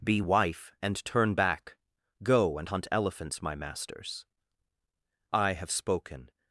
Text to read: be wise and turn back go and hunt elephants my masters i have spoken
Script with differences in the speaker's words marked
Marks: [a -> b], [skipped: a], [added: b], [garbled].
be [wise -> wife] and turn back go and hunt elephants my masters i have spoken